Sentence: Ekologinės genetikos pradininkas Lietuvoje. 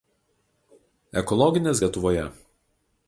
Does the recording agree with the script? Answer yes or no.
no